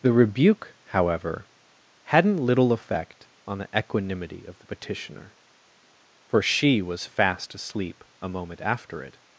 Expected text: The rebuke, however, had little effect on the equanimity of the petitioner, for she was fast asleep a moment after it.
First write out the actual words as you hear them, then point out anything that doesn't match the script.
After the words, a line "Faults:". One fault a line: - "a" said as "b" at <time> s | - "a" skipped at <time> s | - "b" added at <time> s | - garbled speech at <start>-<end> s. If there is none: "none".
The rebuke, however, hadn't little effect on the equanimity of the petitioner, for she was fast asleep a moment after it.
Faults:
- "had" said as "hadn't" at 2.0 s